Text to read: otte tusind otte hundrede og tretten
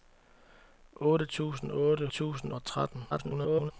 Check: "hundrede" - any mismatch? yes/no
yes